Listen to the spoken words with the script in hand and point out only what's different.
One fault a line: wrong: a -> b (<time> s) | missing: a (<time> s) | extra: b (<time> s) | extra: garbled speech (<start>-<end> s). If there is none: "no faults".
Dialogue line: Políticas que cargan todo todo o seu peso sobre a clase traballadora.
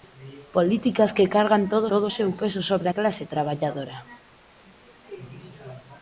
no faults